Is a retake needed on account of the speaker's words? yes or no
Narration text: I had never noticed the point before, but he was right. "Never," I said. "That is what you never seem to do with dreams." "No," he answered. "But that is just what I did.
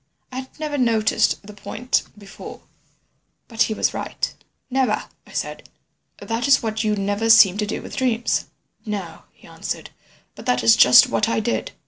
no